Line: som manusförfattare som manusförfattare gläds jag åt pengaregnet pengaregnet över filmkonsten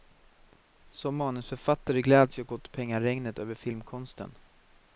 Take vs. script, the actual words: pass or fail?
fail